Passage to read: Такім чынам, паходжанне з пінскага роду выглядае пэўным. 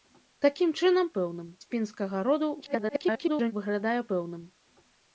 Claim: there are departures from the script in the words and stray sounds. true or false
true